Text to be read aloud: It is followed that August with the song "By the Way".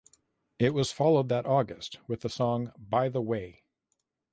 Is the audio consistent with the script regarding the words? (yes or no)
no